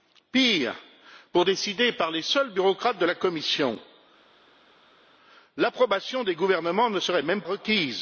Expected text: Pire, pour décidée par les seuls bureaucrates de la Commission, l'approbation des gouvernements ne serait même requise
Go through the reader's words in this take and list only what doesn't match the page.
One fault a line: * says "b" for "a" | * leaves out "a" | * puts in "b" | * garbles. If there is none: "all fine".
all fine